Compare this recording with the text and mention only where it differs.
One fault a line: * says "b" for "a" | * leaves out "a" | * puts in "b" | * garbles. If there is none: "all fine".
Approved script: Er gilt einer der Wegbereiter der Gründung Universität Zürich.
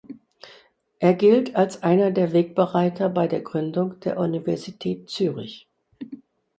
* puts in "als"
* puts in "bei"
* puts in "der"